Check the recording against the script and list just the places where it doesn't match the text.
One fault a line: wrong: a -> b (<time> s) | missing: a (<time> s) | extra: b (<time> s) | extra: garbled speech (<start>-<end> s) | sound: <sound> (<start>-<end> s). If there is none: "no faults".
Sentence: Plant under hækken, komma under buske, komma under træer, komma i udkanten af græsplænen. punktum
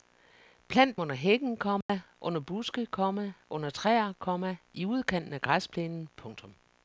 sound: dropout (1.8-1.9 s)